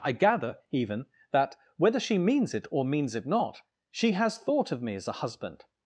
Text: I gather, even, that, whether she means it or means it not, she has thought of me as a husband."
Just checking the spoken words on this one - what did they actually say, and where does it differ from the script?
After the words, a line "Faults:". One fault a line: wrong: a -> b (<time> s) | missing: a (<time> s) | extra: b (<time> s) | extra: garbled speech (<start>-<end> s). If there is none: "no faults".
I gather, even, that, whether she means it or means it not, she has thought of me as a husband."
Faults:
no faults